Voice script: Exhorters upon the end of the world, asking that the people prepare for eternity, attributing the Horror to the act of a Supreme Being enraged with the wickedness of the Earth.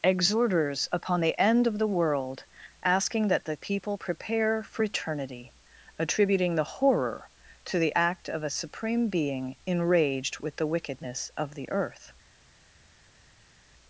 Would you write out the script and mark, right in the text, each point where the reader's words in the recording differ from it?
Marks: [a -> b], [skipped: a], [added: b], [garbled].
Exhorters upon the end of the world, asking that the people prepare for eternity, attributing the Horror to the act of a Supreme Being enraged with the wickedness of the Earth.